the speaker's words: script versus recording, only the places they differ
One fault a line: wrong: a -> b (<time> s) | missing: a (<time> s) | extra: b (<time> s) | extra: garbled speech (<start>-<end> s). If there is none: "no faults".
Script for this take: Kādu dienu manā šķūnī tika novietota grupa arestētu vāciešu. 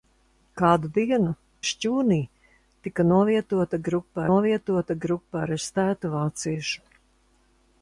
missing: manā (1.3 s)
extra: novietota grupa (4.3 s)